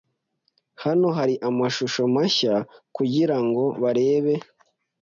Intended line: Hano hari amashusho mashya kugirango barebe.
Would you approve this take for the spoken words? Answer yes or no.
yes